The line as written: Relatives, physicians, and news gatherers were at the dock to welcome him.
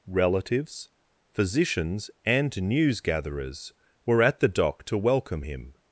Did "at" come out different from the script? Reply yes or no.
no